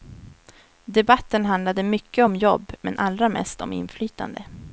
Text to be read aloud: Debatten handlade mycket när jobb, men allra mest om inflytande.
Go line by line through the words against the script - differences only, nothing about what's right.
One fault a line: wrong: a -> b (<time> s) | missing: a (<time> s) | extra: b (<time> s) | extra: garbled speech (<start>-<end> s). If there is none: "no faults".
wrong: när -> om (2.2 s)